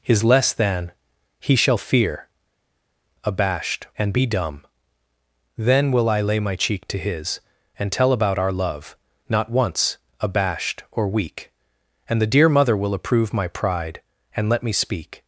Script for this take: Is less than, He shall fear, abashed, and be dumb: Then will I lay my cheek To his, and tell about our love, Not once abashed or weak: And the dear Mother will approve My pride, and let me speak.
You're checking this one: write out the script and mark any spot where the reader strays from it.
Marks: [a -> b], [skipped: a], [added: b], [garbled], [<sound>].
Is less than, He shall fear, abashed, and be dumb: Then will I lay my cheek To his, and tell about our love, Not once abashed or weak: And the dear Mother will approve My pride, and let me speak.